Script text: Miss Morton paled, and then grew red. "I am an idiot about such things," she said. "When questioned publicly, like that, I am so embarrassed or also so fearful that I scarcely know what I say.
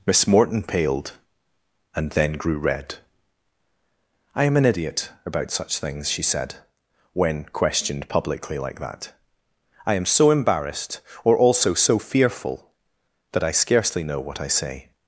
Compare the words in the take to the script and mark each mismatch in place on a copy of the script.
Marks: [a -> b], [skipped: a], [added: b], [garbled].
Miss Morton paled, and then grew red. "I am an idiot about such things," she said. "When questioned publicly, like that, I am so embarrassed or also so fearful that I scarcely know what I say.